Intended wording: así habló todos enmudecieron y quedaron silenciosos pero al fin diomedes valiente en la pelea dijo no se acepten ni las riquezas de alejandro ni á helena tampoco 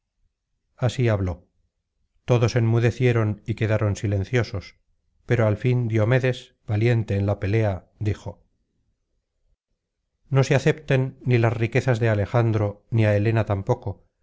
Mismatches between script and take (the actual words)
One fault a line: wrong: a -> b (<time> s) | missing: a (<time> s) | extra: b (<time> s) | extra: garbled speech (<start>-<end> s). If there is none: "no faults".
no faults